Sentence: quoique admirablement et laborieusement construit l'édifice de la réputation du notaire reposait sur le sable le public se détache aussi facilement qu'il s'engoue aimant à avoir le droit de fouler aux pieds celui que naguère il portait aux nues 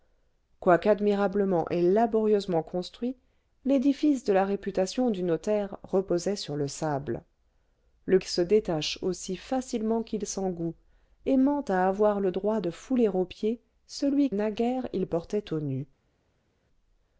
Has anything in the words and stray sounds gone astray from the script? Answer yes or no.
yes